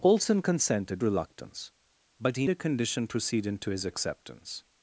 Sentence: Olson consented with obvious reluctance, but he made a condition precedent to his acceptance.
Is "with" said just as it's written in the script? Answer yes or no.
no